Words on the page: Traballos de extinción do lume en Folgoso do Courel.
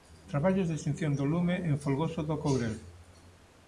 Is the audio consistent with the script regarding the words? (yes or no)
yes